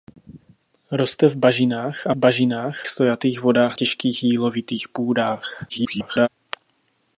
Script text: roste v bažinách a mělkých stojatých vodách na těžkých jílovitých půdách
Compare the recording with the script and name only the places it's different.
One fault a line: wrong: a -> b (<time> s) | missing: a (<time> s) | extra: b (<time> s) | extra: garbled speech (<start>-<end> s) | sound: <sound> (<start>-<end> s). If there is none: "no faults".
wrong: mělkých -> bažinách (2.1 s)
missing: na (3.8 s)
extra: garbled speech (5.7-6.3 s)